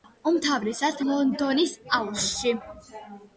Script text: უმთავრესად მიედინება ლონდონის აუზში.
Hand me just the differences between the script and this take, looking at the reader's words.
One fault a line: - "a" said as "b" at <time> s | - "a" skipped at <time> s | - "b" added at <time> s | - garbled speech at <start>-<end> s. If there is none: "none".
- "მიედინება" skipped at 1.0 s